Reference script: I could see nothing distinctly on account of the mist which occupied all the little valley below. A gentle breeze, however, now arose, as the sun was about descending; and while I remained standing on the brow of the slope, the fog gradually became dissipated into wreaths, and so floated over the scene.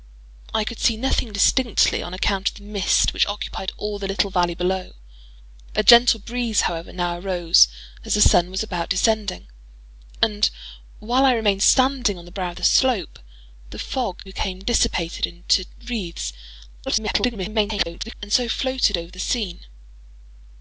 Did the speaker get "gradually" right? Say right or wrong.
wrong